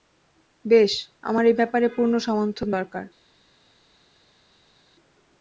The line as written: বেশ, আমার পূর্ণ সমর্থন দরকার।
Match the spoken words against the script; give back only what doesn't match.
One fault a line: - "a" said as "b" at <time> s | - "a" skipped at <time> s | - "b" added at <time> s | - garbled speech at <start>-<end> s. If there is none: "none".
- "এই ব্যাপারে" added at 1.4 s